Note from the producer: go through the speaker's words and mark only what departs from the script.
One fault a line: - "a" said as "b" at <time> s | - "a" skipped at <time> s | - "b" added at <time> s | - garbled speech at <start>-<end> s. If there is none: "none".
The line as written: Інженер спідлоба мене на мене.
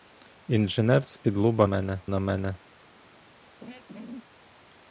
none